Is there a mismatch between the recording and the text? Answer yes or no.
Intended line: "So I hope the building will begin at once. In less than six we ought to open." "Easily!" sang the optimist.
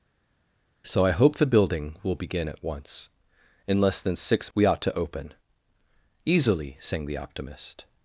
no